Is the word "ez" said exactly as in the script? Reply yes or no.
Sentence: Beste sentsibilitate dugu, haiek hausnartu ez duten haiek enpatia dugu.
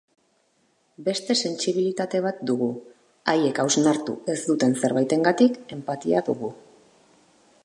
yes